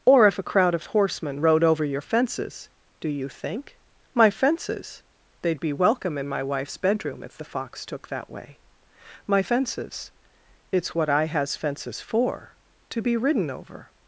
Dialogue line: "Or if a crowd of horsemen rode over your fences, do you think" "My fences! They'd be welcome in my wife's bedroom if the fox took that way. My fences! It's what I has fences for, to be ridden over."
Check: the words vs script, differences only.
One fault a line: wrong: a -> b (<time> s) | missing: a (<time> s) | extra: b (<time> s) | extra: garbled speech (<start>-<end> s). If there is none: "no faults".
no faults